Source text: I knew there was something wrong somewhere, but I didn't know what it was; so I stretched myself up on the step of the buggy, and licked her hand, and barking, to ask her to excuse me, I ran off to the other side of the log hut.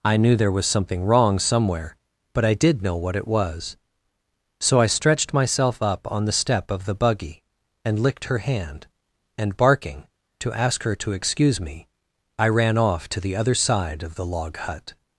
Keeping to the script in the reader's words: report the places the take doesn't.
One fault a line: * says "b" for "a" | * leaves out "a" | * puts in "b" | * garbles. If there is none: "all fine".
* says "did" for "didn't"